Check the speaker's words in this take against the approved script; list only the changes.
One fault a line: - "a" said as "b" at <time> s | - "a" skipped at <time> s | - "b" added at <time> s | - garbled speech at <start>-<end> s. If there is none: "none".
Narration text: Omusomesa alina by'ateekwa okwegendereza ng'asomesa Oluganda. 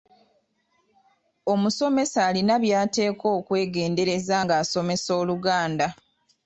none